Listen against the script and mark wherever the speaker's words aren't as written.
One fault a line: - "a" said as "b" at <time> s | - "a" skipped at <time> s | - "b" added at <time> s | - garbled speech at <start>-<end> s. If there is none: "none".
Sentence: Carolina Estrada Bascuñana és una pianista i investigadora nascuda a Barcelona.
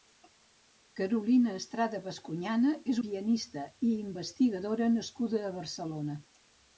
- "una" skipped at 3.0 s